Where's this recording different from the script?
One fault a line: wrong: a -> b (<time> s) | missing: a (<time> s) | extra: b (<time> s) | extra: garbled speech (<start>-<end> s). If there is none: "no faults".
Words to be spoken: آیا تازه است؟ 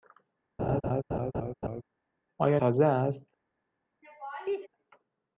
no faults